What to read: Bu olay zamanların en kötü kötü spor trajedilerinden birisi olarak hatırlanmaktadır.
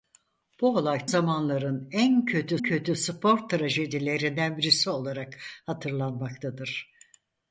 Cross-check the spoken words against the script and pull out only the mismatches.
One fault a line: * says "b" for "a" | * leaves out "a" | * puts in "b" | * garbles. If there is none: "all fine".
all fine